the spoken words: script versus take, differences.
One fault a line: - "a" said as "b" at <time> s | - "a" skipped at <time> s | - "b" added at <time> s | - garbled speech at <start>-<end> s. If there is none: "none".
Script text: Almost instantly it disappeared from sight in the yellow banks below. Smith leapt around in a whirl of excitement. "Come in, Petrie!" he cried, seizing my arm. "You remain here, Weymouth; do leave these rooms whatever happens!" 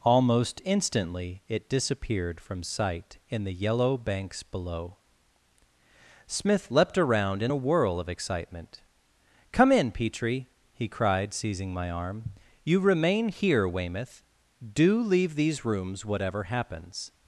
none